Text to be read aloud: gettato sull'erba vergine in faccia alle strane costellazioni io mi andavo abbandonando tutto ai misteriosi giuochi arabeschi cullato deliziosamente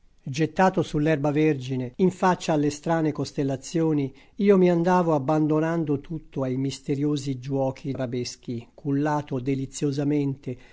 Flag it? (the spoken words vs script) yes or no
no